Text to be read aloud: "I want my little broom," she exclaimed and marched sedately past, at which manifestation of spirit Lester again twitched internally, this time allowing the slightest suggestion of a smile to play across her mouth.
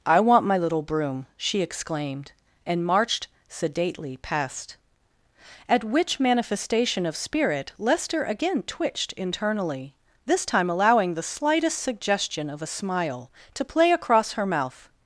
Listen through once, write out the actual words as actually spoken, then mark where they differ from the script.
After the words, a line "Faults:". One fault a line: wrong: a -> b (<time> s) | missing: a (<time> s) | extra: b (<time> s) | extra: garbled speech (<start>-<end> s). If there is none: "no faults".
"I want my little broom," she exclaimed and marched sedately past, at which manifestation of spirit Lester again twitched internally, this time allowing the slightest suggestion of a smile to play across her mouth.
Faults:
no faults